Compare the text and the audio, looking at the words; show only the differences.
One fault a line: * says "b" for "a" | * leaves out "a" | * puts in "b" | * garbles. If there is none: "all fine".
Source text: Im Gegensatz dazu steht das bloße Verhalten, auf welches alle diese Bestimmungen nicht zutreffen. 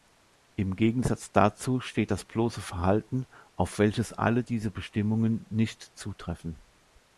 all fine